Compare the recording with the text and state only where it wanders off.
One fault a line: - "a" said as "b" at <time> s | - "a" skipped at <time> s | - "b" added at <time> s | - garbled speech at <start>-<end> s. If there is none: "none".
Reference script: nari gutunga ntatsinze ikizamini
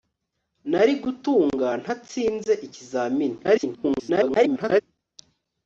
- garbled speech at 3.4-4.8 s